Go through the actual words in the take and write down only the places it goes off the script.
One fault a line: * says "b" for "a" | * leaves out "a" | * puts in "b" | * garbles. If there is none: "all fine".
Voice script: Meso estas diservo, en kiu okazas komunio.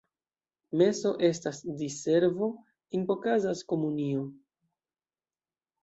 * leaves out "kiu"